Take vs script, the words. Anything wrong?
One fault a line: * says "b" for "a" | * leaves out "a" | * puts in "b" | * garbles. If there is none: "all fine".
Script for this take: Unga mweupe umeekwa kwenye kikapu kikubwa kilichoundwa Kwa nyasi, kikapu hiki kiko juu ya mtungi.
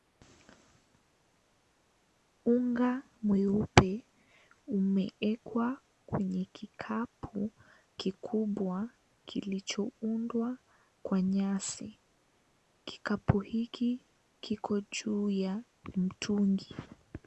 all fine